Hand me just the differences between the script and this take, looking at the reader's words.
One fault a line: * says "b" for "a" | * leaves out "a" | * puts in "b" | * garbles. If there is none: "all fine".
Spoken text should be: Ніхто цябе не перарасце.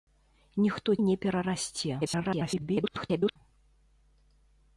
* leaves out "цябе"
* garbles